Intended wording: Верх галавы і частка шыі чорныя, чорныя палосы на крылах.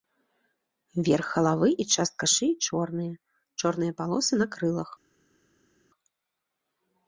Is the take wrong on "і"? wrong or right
right